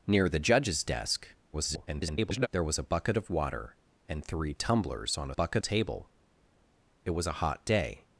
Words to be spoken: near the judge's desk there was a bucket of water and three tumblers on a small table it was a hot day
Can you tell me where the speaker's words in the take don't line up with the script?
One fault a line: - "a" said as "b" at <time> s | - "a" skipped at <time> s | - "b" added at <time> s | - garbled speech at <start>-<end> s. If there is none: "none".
- garbled speech at 1.5-2.5 s
- "small" said as "bucket" at 5.3 s